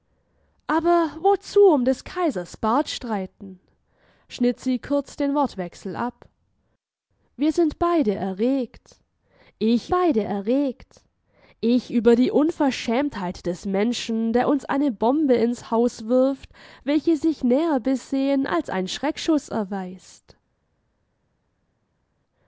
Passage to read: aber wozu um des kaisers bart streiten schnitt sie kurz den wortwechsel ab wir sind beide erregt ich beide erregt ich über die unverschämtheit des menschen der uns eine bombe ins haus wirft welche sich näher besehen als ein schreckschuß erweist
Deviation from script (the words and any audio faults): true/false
false